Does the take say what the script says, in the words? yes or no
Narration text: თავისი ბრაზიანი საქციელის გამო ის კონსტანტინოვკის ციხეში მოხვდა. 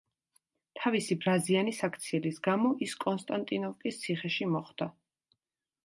yes